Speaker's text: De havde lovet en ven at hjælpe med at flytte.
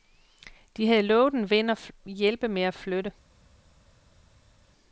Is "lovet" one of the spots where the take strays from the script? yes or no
no